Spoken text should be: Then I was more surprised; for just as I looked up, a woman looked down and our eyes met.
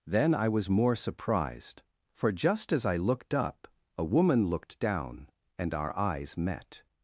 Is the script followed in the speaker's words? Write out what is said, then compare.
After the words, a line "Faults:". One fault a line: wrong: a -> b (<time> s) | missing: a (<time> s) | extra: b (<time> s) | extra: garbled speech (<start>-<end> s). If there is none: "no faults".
Then I was more surprised; for just as I looked up, a woman looked down and our eyes met.
Faults:
no faults